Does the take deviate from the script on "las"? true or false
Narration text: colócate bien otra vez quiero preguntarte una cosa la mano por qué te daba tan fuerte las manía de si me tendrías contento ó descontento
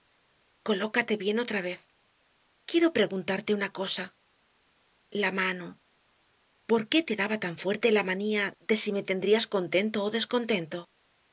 true